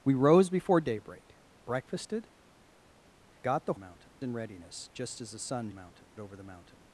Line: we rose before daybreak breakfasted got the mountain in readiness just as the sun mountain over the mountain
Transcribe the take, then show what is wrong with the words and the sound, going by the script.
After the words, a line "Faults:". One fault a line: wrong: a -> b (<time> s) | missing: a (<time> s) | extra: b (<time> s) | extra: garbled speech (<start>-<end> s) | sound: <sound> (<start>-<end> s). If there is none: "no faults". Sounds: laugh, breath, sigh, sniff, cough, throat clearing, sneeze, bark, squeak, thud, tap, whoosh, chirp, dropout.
we rose before daybreak breakfasted got the mountain in readiness just as the sun mountain over the mountain
Faults:
no faults